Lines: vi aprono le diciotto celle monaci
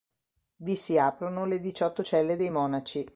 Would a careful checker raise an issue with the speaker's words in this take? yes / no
yes